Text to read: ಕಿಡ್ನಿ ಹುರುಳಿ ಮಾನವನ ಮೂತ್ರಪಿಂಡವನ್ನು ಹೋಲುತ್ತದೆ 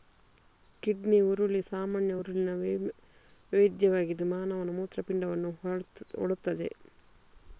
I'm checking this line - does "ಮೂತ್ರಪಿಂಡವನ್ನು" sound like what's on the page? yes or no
yes